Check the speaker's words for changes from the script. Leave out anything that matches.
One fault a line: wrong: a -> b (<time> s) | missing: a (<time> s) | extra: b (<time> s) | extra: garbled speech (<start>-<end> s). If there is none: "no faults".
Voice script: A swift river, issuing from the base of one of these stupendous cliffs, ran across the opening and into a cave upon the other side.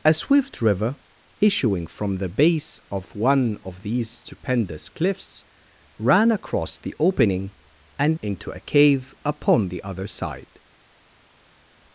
no faults